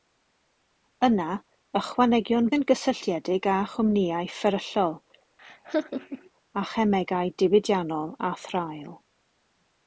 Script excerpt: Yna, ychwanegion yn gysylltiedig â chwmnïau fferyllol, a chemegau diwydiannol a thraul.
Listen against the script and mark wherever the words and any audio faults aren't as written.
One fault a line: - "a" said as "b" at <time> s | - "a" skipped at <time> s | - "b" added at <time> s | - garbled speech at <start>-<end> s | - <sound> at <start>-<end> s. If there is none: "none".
- laugh at 5.4-6.3 s